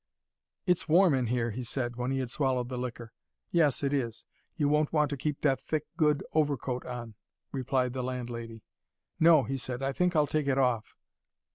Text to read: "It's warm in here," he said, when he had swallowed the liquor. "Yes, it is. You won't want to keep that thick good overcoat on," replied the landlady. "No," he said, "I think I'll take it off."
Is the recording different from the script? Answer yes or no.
no